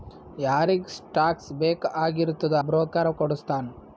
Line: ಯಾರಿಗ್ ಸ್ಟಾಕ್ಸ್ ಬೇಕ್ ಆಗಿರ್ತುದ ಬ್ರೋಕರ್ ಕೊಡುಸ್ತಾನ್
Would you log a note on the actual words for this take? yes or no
no